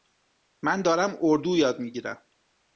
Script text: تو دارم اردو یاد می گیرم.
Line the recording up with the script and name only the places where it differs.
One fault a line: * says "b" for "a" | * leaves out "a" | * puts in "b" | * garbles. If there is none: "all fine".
* says "من" for "تو"